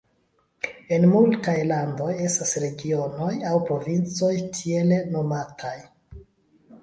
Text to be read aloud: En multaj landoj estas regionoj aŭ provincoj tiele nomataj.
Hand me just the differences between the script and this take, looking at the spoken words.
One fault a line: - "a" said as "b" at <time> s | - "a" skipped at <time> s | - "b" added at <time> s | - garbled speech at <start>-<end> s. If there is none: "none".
none